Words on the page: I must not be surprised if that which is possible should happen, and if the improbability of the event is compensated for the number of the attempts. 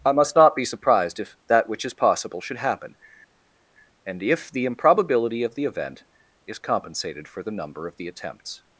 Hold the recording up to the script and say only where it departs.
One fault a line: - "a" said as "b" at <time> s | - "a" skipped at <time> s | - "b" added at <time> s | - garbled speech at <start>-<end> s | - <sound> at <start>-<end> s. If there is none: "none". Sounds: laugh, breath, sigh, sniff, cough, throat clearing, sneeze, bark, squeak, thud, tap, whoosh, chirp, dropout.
none